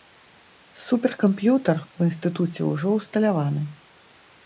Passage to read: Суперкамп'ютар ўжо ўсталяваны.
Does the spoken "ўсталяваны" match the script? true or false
true